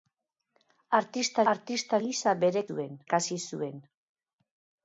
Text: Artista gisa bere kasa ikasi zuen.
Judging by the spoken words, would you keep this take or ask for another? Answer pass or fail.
fail